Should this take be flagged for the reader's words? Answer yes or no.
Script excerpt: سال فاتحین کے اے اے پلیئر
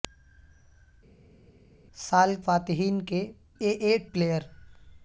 no